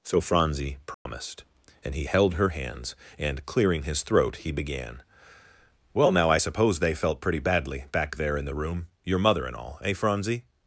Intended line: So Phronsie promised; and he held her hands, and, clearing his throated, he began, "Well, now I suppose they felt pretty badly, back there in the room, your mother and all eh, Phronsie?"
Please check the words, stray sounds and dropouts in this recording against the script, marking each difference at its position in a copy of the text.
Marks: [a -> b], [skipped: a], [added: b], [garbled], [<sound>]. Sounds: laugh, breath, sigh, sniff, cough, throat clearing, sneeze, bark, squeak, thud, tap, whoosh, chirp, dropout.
So Phronsie promised; [dropout] and he held her hands, and, clearing his [throated, -> throat] he began, "Well, now I suppose they felt pretty badly, back there in the room, your mother and all eh, Phronsie?"